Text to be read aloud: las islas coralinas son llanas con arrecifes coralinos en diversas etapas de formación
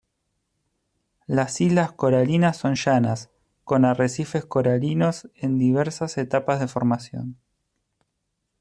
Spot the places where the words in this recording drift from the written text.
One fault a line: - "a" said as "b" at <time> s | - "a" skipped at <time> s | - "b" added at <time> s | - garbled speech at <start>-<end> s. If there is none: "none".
none